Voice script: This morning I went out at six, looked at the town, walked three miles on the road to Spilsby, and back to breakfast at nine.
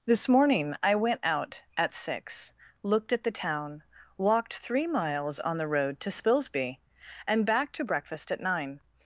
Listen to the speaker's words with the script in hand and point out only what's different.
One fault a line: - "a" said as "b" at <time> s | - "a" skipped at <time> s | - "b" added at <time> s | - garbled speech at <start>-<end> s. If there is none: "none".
none